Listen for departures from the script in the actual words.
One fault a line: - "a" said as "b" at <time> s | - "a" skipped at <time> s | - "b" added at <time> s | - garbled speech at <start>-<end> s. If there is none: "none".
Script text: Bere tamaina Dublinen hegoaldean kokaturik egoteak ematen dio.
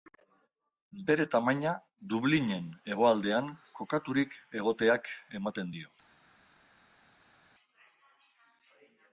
none